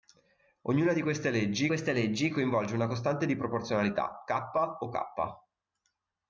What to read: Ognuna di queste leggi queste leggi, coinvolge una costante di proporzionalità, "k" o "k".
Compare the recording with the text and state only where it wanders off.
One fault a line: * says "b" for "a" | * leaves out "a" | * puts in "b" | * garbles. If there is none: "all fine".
all fine